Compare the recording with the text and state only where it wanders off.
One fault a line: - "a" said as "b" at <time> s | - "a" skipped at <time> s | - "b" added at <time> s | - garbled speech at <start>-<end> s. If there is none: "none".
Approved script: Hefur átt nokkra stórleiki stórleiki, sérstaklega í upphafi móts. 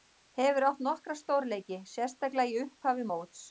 - "stórleiki" skipped at 1.8 s